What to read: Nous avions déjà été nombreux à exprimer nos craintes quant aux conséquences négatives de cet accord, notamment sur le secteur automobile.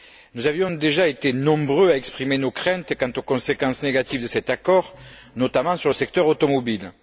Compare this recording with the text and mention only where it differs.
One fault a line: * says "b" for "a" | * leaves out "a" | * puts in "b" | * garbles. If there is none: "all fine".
all fine